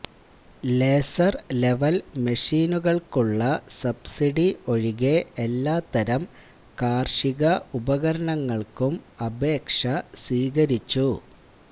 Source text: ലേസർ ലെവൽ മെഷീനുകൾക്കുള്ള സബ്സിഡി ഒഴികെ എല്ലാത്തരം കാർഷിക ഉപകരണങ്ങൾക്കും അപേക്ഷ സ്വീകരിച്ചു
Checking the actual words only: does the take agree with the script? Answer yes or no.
yes